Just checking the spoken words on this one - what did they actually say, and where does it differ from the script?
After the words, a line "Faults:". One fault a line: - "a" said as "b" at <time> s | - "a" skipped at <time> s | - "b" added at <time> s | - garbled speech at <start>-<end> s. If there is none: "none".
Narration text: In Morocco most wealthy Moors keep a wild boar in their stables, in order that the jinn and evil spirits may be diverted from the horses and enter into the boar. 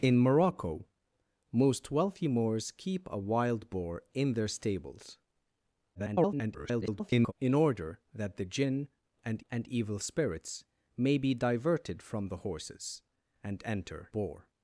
In Morocco most wealthy Moors keep a wild boar in their stables, [garbled] in order that the jinn and and evil spirits may be diverted from the horses and enter boar.
Faults:
- garbled speech at 5.9-7.3 s
- "and" added at 9.5 s
- "into the" skipped at 14.1 s